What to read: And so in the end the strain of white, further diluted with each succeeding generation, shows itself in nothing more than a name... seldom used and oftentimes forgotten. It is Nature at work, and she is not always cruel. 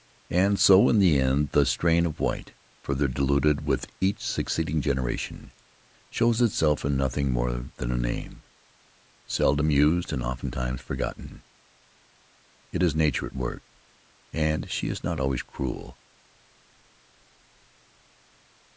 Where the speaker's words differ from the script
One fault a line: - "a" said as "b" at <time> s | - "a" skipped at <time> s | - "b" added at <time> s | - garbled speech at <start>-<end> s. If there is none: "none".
none